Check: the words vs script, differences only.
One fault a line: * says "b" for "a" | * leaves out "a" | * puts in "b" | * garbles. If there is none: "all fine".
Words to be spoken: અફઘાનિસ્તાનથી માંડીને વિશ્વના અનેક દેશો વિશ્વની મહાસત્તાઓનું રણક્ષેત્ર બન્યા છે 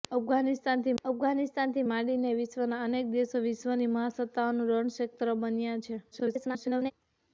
* puts in "અફઘાનિસ્તાનથી"
* garbles